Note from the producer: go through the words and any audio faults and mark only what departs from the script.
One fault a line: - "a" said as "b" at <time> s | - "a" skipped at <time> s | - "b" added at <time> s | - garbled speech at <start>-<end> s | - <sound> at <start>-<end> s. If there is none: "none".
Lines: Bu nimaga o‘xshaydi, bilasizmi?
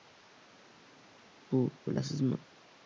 - "nimaga o‘xshaydi" skipped at 1.6 s